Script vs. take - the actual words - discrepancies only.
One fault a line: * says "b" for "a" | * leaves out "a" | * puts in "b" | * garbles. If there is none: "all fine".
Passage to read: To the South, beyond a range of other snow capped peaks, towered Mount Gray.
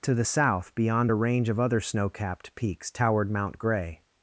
all fine